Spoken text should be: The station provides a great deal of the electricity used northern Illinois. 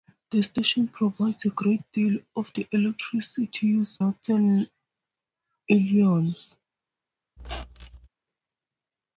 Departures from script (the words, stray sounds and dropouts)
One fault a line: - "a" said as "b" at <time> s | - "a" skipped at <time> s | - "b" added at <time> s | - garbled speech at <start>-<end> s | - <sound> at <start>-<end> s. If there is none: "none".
- squeak at 7.4-8.1 s